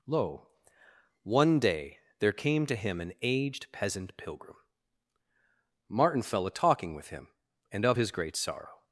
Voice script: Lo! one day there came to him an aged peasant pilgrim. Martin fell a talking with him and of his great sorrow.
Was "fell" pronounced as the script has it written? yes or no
yes